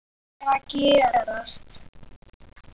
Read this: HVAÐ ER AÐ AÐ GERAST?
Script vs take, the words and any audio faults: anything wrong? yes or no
no